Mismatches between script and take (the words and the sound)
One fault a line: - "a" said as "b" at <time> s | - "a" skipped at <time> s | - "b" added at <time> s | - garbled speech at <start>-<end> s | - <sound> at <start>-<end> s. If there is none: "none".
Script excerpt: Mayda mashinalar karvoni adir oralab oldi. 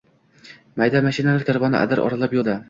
none